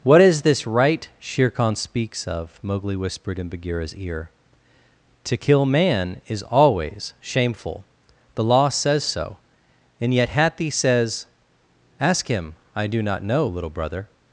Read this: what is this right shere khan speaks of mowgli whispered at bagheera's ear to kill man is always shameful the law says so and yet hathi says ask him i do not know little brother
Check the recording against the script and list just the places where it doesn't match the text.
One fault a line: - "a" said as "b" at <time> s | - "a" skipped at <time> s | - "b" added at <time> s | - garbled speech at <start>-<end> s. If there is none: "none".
- "at" said as "in" at 3.4 s